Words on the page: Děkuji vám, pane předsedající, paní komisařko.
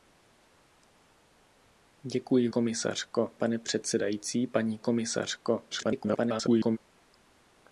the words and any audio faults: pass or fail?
fail